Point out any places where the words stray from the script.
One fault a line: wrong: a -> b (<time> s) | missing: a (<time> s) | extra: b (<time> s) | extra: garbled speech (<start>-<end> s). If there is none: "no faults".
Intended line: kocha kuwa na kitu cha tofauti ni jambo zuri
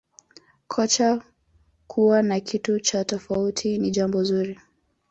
no faults